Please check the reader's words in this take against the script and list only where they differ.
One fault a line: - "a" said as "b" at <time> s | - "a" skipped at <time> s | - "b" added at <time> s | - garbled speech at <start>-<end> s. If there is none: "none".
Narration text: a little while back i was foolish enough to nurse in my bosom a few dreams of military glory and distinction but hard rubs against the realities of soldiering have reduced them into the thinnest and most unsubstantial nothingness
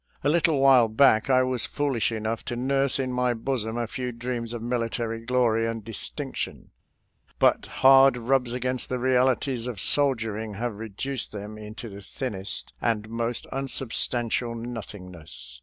none